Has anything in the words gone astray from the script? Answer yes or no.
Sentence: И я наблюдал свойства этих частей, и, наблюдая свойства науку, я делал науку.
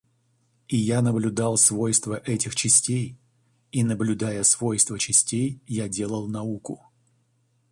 yes